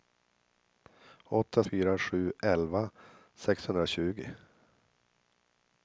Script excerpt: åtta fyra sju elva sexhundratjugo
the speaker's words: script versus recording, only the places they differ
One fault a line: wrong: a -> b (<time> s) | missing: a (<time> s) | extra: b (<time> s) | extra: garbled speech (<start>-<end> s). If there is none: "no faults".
no faults